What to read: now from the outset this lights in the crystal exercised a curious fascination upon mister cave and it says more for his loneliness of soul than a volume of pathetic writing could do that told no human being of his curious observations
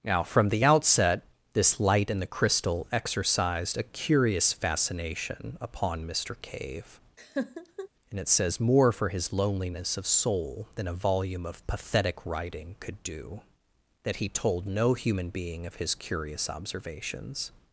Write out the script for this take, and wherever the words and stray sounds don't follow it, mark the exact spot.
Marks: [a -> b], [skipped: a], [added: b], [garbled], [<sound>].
now from the outset this [lights -> light] in the crystal exercised a curious fascination upon mister cave [laugh] and it says more for his loneliness of soul than a volume of pathetic writing could do that [added: he] told no human being of his curious observations